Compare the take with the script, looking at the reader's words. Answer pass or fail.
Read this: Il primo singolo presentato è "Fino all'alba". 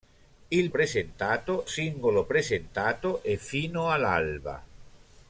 fail